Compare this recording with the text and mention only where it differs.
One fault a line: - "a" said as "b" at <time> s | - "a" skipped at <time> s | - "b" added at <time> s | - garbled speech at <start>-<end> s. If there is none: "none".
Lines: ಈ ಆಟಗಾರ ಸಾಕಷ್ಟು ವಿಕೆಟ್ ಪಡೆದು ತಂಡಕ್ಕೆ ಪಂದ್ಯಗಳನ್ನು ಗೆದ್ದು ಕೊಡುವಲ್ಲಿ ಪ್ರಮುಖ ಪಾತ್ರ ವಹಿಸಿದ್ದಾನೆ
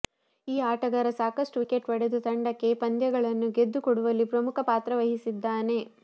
none